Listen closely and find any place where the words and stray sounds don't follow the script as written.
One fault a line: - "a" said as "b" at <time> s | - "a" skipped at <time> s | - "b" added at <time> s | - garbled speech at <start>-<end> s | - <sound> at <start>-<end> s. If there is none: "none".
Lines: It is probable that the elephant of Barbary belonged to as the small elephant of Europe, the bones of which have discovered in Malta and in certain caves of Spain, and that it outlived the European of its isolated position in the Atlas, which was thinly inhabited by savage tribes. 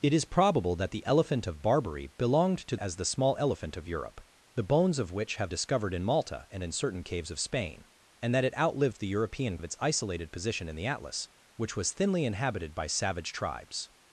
none